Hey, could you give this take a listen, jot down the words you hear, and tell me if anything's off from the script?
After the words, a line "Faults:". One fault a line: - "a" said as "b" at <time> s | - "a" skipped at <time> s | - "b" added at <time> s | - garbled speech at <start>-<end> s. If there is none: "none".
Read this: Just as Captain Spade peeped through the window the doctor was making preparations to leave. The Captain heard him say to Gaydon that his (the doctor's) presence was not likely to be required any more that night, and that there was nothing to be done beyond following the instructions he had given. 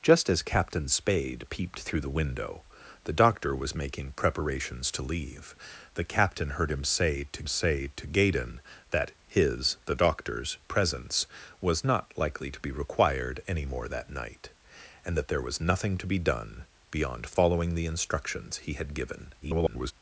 Just as Captain Spade peeped through the window the doctor was making preparations to leave. The Captain heard him say to say to Gaydon that his (the doctor's) presence was not likely to be required any more that night, and that there was nothing to be done beyond following the instructions he had given. [garbled]
Faults:
- "say to" added at 7.5 s
- garbled speech at 19.4-19.9 s